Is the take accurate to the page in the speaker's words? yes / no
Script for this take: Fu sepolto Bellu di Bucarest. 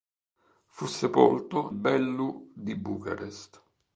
yes